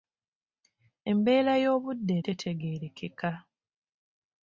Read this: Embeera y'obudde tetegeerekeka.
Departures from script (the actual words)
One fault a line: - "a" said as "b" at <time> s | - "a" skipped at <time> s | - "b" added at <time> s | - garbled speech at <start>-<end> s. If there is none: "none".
none